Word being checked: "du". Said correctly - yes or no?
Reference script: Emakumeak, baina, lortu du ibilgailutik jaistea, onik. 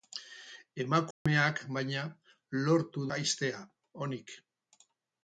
no